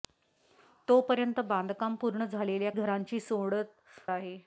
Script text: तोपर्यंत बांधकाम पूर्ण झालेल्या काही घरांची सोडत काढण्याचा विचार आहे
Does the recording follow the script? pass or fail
fail